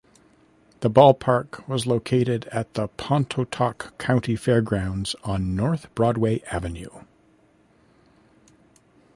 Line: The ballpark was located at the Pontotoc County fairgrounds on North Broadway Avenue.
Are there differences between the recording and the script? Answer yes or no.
no